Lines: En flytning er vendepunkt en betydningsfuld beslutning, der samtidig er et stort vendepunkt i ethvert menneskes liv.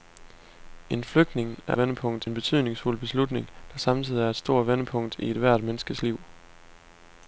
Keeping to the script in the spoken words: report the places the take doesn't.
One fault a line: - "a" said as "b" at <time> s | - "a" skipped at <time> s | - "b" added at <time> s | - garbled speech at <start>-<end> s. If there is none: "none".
none